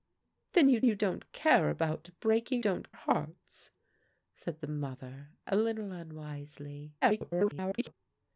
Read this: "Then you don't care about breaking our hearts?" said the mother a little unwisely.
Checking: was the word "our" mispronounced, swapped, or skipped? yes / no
yes